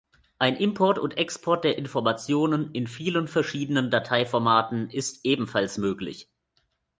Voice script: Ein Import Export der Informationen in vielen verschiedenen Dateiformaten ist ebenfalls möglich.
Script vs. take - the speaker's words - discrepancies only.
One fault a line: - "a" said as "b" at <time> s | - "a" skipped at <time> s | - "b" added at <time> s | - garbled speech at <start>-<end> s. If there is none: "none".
- "und" added at 1.0 s